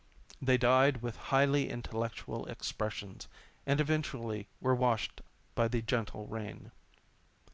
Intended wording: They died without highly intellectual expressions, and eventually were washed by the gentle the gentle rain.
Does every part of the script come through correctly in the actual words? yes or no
no